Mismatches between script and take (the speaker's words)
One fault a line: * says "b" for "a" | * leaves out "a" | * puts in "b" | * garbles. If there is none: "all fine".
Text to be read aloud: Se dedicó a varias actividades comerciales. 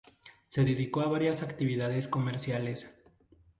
all fine